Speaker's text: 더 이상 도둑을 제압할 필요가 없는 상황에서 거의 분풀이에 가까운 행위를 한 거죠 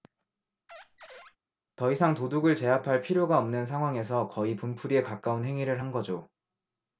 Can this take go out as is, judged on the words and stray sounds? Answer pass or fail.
fail